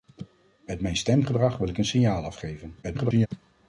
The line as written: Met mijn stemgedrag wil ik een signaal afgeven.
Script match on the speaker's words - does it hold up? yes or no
no